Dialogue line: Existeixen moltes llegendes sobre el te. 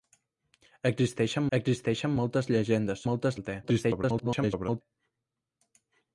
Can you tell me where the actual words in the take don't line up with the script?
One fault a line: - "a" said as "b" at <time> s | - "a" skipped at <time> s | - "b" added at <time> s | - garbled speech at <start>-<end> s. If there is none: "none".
- "existeixen" added at 1.6 s
- "sobre" said as "moltes" at 3.1 s
- garbled speech at 3.6-4.8 s